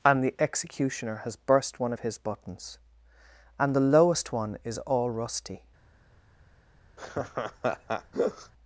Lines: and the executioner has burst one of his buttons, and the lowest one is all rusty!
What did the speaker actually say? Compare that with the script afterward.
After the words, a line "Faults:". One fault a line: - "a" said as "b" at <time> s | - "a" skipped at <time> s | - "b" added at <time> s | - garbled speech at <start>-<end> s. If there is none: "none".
and the executioner has burst one of his buttons, and the lowest one is all rusty!
Faults:
none